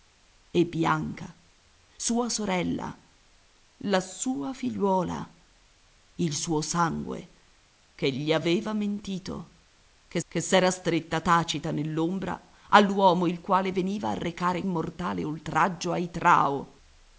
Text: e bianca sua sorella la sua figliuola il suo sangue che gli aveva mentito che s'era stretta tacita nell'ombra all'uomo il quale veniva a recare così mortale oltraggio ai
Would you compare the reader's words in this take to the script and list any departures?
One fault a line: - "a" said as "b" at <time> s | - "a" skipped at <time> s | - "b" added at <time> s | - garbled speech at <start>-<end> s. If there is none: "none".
- "che" added at 10.3 s
- "così" skipped at 14.6 s